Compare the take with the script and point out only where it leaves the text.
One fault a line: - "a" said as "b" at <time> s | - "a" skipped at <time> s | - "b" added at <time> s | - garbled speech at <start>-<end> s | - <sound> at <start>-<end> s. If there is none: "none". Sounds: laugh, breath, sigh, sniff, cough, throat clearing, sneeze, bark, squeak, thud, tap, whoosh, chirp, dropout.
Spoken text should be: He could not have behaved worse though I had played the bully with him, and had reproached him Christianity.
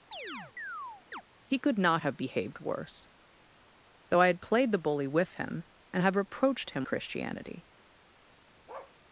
- chirp at 0.1-1.2 s
- bark at 8.7-9.0 s